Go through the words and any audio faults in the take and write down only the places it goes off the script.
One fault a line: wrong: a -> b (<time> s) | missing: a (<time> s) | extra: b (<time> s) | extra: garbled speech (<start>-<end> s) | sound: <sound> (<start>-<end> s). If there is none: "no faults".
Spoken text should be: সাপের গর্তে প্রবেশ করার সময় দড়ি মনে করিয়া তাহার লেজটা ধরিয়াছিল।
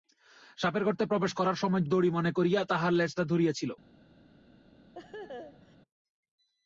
sound: laugh (4.9-5.8 s)